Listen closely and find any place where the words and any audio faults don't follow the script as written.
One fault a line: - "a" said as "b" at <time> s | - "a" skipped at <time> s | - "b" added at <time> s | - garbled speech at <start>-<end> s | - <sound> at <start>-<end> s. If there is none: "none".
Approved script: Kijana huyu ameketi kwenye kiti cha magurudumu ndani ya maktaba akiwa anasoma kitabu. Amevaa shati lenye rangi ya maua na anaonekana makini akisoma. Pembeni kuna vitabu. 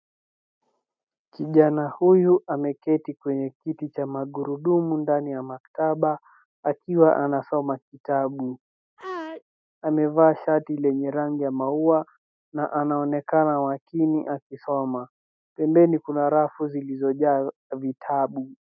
- sneeze at 9.0-9.4 s
- "rafu zilizojaa" added at 16.3 s